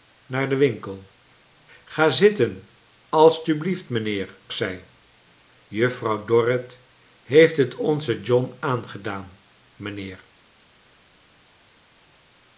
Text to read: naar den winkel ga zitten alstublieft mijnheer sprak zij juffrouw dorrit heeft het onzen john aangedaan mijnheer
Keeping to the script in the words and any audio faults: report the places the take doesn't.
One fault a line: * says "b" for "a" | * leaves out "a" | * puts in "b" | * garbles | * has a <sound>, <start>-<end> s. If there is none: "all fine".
* leaves out "sprak"